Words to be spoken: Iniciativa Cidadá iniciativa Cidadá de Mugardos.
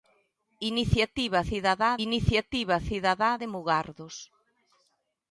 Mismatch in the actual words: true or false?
false